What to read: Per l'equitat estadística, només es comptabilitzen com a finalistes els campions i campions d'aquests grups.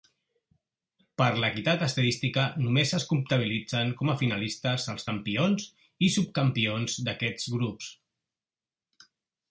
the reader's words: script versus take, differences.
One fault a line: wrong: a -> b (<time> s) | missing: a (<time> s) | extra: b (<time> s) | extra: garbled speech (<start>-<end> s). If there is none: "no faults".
wrong: campions -> subcampions (6.2 s)